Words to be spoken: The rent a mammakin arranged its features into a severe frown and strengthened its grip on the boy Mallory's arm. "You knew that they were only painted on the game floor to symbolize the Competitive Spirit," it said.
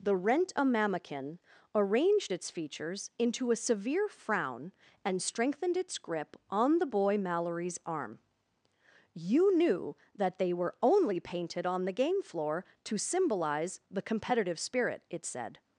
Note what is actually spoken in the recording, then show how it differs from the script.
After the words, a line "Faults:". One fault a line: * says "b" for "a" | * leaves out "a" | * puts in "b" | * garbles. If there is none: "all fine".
The rent a mammakin arranged its features into a severe frown and strengthened its grip on the boy Mallory's arm. "You knew that they were only painted on the game floor to symbolize the Competitive Spirit," it said.
Faults:
all fine